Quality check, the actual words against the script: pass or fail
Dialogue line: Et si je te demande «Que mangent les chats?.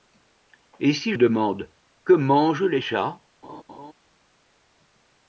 fail